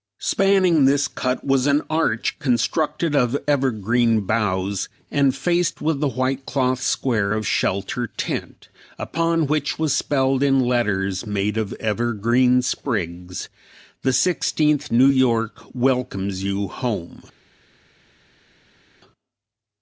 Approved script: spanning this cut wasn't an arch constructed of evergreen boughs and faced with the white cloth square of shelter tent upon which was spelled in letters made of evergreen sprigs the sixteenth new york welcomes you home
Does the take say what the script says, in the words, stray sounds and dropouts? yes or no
no